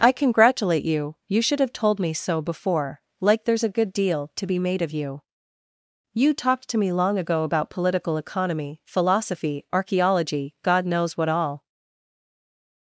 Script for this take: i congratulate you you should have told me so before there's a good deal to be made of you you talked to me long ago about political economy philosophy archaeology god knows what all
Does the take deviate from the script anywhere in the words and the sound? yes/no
yes